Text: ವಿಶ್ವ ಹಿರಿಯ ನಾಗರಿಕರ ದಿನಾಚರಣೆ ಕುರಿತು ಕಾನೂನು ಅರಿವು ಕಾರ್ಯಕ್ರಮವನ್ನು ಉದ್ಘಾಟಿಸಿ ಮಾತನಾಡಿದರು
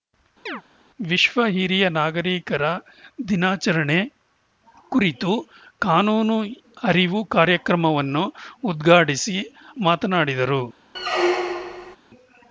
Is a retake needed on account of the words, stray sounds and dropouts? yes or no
yes